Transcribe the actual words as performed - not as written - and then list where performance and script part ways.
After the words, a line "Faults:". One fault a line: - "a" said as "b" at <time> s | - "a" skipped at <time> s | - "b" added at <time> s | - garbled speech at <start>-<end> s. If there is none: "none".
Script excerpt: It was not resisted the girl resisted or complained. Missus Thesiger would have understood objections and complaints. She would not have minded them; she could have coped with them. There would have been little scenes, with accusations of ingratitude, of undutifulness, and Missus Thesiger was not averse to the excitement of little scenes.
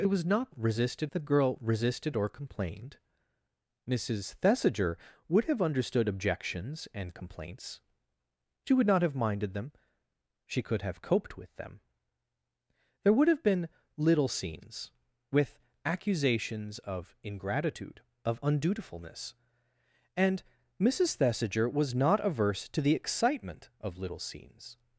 It was not resisted the girl resisted or complained. Missus Thesiger would have understood objections and complaints. She would not have minded them; she could have coped with them. There would have been little scenes, with accusations of ingratitude, of undutifulness, and Missus Thesiger was not averse to the excitement of little scenes.
Faults:
none